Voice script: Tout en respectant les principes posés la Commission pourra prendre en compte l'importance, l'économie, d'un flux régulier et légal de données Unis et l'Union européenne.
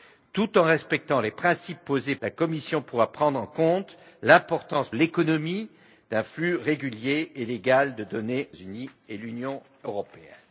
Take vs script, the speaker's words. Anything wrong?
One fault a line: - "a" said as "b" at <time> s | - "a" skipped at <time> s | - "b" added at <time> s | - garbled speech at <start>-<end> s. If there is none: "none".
none